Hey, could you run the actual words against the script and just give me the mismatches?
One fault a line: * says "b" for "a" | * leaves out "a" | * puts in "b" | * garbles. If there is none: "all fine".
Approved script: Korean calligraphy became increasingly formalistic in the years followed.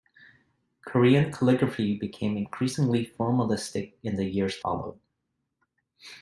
all fine